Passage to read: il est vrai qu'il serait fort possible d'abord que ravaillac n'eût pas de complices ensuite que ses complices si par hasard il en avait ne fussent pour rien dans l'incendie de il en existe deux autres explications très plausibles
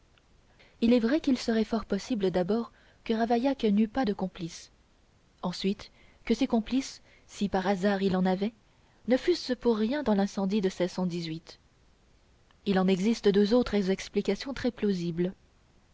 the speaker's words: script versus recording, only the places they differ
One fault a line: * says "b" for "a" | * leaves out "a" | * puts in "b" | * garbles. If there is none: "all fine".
all fine